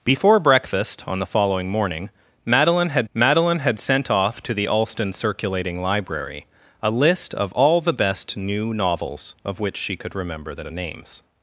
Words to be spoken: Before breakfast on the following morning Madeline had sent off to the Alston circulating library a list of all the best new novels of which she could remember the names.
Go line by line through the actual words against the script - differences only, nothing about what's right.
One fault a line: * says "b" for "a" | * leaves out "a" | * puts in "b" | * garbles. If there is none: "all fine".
* puts in "Madeline had"
* puts in "the"